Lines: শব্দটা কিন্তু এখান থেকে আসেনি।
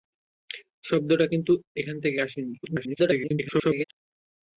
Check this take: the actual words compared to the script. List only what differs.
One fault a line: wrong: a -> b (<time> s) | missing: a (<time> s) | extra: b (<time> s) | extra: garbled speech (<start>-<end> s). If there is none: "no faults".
extra: garbled speech (2.6-3.8 s)